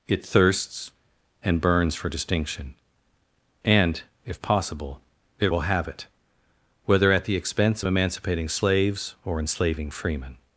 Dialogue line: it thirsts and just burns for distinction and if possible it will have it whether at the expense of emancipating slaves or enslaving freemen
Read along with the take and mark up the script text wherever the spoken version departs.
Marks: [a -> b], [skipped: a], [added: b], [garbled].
it thirsts and [skipped: just] burns for distinction and if possible it will have it whether at the expense of emancipating slaves or enslaving freemen